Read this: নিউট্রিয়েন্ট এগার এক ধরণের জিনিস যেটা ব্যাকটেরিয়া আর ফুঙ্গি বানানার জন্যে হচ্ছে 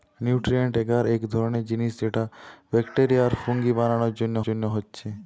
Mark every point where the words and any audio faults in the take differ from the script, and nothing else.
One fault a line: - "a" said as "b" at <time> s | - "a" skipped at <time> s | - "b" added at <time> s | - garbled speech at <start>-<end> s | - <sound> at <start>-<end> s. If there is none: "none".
- "জন্যে" added at 4.5 s